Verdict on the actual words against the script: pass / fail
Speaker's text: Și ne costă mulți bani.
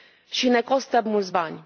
pass